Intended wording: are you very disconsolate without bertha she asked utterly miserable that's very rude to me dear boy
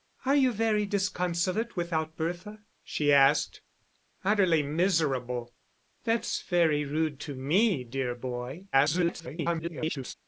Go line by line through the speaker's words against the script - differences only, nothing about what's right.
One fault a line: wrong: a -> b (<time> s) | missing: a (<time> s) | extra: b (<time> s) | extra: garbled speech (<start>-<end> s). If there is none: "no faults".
extra: garbled speech (8.7-10.1 s)